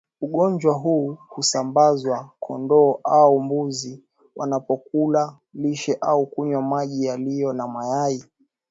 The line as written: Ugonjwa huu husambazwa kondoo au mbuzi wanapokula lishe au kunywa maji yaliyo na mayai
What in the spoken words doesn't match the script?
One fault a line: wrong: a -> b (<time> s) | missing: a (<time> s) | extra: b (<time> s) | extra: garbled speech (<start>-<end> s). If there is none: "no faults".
no faults